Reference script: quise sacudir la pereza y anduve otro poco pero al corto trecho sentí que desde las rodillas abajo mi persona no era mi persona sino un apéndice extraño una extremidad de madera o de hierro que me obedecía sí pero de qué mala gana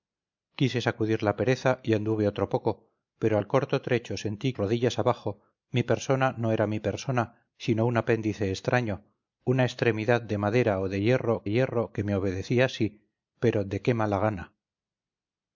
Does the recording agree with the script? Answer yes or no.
no